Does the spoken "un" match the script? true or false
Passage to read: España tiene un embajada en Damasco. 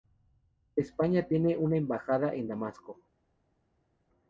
false